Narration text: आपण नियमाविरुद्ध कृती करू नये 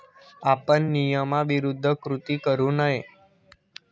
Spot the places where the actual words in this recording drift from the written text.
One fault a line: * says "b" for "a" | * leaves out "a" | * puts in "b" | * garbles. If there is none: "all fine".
all fine